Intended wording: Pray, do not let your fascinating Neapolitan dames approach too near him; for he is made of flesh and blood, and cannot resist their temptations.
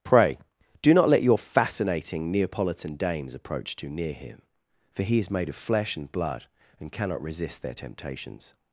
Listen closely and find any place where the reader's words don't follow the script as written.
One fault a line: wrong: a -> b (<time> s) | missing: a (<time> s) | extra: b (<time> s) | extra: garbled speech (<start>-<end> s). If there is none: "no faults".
no faults